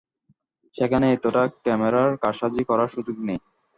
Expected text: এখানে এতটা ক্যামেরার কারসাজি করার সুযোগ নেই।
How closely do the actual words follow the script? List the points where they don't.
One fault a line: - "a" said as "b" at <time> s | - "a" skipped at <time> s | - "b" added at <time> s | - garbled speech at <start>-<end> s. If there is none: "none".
- "এখানে" said as "সেখানে" at 0.8 s